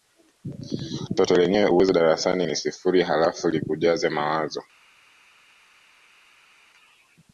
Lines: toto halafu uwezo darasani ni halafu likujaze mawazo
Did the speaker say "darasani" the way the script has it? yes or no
yes